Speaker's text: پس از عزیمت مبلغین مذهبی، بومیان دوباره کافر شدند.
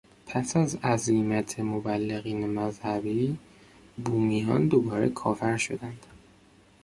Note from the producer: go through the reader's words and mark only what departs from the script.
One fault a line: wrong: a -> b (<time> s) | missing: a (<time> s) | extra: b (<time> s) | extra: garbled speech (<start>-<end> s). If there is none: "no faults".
no faults